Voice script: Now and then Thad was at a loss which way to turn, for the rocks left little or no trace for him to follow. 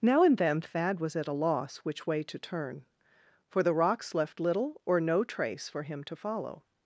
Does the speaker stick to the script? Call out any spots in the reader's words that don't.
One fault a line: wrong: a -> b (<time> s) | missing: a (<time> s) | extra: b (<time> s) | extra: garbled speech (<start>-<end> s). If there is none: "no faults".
no faults